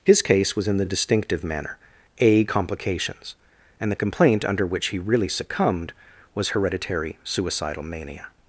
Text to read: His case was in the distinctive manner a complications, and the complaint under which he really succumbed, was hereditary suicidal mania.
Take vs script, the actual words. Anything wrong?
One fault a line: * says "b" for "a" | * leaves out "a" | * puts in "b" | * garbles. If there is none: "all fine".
all fine